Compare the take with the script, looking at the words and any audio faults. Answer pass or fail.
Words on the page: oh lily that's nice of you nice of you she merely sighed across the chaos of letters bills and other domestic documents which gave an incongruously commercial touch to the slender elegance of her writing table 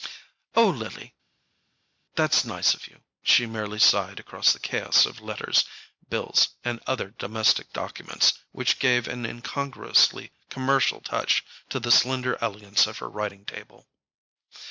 fail